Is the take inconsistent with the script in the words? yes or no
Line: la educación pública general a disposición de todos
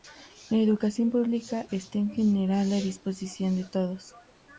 yes